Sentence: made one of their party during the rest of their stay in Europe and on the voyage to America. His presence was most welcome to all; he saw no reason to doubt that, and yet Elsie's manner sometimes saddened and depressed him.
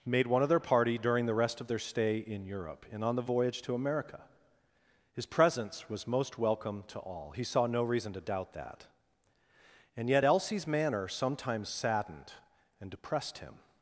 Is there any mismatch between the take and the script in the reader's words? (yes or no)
no